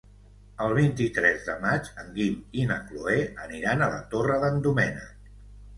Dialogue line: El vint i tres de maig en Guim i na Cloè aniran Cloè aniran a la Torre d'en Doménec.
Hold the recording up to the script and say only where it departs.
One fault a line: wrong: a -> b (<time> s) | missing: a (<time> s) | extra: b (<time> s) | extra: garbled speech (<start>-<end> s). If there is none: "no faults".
missing: Cloè aniran (3.9 s)